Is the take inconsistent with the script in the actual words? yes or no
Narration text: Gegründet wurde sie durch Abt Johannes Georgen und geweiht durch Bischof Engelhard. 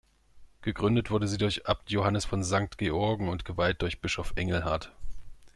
yes